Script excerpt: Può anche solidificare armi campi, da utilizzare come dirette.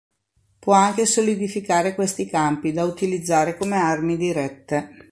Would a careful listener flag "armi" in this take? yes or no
yes